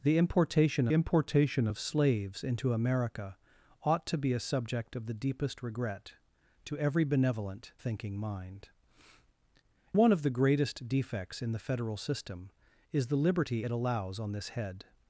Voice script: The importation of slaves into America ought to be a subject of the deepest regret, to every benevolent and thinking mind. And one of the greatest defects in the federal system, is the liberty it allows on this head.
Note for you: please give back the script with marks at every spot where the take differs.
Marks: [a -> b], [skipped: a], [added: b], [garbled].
The importation [added: importation] of slaves into America ought to be a subject of the deepest regret, to every benevolent [skipped: and] thinking mind. [skipped: And] one of the greatest defects in the federal system, is the liberty it allows on this head.